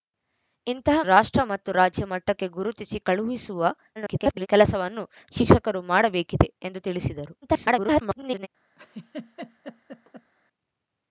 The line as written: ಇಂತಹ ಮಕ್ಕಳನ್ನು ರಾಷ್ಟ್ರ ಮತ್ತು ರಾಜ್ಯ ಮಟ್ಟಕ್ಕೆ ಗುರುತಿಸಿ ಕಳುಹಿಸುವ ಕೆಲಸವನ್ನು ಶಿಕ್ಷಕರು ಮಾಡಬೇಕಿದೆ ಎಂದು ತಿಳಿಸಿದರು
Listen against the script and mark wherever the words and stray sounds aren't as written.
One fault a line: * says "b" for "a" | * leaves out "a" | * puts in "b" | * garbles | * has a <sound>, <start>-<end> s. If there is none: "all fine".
* leaves out "ಮಕ್ಕಳನ್ನು"
* garbles
* garbles
* has a laugh, 8.8-10.3 s